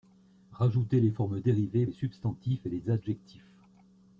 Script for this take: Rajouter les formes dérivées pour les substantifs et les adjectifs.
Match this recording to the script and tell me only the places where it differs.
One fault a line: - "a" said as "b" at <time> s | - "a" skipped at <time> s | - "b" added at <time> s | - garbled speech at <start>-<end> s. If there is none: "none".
- "pour" skipped at 1.9 s